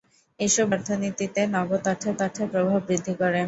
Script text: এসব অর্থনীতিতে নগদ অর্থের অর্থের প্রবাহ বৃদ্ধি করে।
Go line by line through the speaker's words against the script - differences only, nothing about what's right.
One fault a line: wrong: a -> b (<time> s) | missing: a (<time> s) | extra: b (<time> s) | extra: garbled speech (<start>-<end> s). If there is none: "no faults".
no faults